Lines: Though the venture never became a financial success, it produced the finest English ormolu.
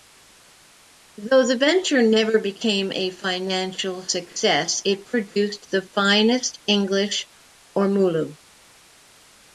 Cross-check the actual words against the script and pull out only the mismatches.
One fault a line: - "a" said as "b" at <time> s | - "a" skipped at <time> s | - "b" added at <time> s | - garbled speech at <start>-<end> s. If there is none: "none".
none